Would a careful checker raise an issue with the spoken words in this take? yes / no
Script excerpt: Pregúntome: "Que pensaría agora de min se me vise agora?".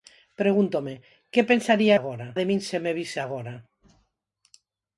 no